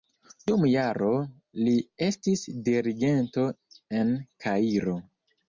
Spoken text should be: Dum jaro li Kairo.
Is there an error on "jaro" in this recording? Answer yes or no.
no